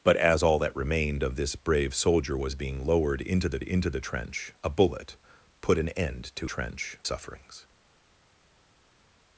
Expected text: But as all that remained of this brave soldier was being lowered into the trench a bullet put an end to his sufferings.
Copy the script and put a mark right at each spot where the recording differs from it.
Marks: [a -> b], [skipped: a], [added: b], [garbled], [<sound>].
But as all that remained of this brave soldier was being lowered into the [added: into the] trench a bullet put an end to [his -> trench] sufferings.